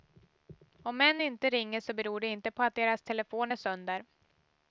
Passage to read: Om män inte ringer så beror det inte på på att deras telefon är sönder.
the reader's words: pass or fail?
fail